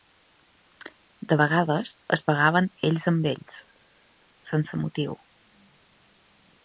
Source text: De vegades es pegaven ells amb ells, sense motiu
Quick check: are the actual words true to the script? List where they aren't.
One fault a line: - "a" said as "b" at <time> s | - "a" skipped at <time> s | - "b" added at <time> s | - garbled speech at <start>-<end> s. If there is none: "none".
none